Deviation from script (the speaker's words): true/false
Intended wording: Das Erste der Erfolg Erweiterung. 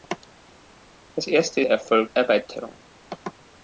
false